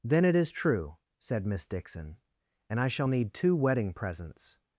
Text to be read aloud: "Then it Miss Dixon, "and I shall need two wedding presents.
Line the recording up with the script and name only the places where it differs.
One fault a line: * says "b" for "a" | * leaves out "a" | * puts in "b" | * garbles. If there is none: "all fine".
* puts in "is true said"